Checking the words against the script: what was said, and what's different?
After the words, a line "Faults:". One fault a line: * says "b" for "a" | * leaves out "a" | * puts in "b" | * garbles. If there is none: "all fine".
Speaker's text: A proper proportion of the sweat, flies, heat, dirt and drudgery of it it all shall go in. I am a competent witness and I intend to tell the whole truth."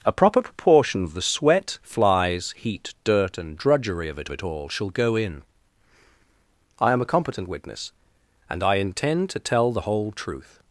A proper proportion of the sweat, flies, heat, dirt and drudgery of it it all shall go in. I am a competent witness and I intend to tell the whole truth."
Faults:
all fine